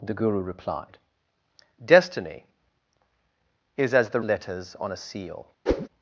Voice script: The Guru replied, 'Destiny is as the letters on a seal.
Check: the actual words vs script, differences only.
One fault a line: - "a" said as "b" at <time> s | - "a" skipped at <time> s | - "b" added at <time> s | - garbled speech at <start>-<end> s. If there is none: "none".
none